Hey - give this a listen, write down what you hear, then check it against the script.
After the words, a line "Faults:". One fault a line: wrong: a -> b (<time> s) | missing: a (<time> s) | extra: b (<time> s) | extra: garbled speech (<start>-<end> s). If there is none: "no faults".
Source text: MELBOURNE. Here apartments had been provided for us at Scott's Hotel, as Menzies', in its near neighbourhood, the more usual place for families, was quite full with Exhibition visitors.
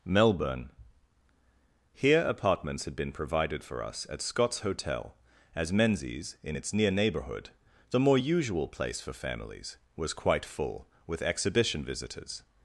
MELBOURNE. Here apartments had been provided for us at Scott's Hotel, as Menzies', in its near neighbourhood, the more usual place for families, was quite full with Exhibition visitors.
Faults:
no faults